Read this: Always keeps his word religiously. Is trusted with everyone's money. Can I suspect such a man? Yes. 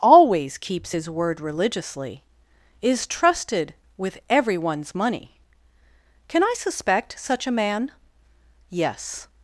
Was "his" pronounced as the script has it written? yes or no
yes